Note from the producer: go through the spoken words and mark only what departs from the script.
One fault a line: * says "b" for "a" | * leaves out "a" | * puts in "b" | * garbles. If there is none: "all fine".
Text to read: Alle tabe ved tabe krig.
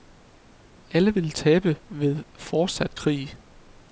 * puts in "vil"
* says "fortsat" for "tabe"